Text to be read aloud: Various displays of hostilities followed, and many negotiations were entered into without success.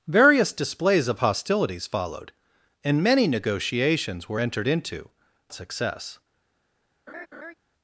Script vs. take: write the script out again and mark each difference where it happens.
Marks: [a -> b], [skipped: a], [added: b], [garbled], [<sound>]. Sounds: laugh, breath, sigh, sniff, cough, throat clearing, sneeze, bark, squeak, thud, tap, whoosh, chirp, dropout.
Various displays of hostilities followed, and many negotiations were entered into [skipped: without] success. [laugh]